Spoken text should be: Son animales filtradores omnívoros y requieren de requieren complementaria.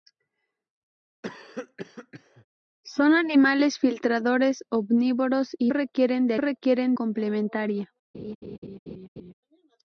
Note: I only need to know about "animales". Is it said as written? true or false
true